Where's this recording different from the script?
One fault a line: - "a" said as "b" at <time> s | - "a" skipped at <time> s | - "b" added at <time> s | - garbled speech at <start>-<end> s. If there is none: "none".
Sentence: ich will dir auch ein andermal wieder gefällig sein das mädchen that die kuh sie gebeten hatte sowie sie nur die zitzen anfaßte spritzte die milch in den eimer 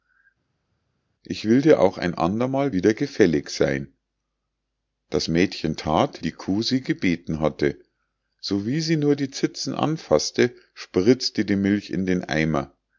none